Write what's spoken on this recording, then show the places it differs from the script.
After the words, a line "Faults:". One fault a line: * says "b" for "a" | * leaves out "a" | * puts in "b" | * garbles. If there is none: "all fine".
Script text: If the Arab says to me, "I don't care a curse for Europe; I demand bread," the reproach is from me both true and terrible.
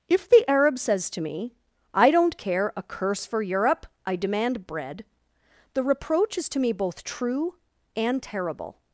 If the Arab says to me, "I don't care a curse for Europe; I demand bread," the reproach is to me both true and terrible.
Faults:
* says "to" for "from"